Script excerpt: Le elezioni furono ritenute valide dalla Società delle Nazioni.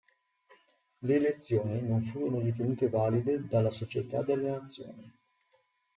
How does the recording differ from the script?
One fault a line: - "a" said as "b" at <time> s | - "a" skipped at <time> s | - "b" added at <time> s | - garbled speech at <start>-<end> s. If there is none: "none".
- "non" added at 1.8 s